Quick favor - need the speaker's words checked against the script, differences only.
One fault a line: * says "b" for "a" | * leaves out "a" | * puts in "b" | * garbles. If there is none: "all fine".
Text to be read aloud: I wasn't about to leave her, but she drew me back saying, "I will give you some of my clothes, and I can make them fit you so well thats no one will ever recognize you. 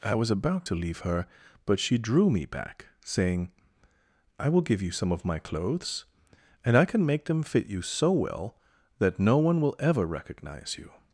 * says "was" for "wasn't"
* says "that" for "thats"